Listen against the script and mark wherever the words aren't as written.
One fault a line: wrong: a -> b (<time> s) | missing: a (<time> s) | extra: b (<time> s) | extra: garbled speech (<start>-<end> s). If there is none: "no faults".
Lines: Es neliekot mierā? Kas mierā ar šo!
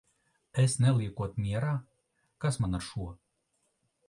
wrong: mierā -> man (2.6 s)